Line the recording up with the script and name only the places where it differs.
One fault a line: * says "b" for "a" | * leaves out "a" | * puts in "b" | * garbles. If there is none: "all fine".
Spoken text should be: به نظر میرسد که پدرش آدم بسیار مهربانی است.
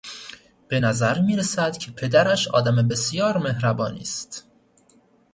all fine